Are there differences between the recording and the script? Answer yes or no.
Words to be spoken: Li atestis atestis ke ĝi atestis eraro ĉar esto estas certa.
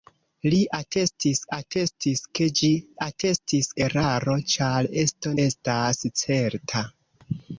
no